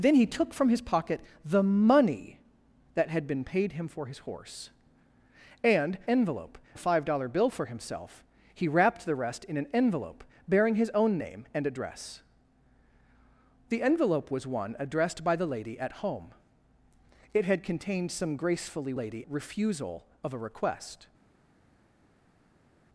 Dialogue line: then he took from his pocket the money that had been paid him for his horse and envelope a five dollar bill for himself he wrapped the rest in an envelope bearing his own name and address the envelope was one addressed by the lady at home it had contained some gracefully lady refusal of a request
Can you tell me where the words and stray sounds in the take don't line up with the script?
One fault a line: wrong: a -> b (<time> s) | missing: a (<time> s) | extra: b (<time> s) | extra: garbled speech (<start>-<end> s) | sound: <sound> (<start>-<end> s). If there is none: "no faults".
no faults